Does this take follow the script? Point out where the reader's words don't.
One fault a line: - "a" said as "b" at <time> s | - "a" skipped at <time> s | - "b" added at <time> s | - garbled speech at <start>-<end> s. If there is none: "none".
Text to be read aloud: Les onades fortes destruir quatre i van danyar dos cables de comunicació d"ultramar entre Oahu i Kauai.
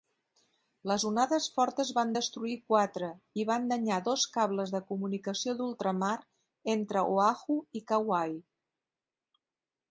- "van" added at 2.0 s